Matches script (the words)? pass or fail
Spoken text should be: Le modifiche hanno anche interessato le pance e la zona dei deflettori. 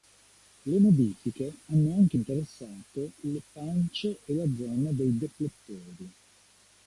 pass